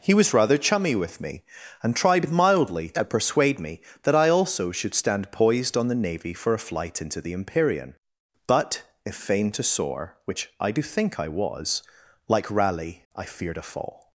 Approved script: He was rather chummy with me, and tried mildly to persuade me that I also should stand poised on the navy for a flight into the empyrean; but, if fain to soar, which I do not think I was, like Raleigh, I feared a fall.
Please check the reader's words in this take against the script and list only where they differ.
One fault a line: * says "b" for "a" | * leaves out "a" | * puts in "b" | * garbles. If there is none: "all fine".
* leaves out "not"